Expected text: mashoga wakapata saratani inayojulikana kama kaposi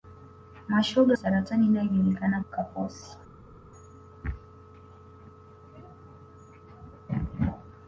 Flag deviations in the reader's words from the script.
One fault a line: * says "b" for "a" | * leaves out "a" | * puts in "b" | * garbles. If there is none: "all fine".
* leaves out "wakapata"
* leaves out "kama"